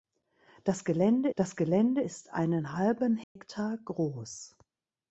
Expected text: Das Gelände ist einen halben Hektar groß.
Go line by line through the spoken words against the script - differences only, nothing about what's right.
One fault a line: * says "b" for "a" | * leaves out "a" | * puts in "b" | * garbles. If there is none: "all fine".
* puts in "das Gelände"